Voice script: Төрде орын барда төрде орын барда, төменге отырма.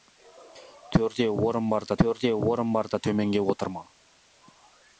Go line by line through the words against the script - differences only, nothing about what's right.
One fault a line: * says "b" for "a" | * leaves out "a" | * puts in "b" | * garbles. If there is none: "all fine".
all fine